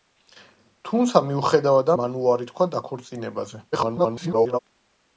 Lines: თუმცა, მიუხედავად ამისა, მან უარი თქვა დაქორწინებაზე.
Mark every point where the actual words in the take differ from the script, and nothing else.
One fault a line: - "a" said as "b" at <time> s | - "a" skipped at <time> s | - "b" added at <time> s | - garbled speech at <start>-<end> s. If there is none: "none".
- "ამისა" skipped at 1.9 s
- garbled speech at 3.7-4.6 s